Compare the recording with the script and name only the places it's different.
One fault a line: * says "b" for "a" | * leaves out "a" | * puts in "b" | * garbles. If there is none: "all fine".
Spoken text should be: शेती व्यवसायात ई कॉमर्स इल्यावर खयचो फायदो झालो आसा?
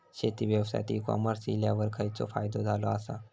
all fine